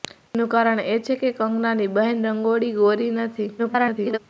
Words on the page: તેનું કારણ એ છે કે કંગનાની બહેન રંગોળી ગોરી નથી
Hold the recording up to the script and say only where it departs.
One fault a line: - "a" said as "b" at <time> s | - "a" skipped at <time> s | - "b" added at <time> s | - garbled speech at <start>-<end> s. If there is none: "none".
- garbled speech at 3.6-4.2 s